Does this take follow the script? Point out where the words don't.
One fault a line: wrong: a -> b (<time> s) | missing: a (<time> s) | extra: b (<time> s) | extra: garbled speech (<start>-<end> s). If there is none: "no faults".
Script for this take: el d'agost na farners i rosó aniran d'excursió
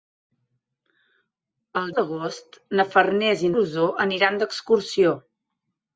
no faults